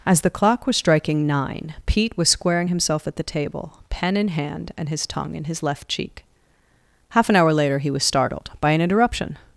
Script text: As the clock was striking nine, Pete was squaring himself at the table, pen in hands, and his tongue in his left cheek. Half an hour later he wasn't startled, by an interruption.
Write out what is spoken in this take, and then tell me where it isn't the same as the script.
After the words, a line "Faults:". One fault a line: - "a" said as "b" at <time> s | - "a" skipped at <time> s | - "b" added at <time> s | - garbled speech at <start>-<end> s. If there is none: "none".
As the clock was striking nine, Pete was squaring himself at the table, pen in hand, and his tongue in his left cheek. Half an hour later he was startled, by an interruption.
Faults:
- "hands" said as "hand" at 4.3 s
- "wasn't" said as "was" at 7.9 s